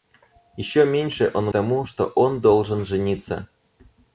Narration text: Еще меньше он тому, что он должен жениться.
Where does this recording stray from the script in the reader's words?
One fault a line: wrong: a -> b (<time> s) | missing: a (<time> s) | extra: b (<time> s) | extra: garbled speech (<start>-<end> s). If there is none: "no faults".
no faults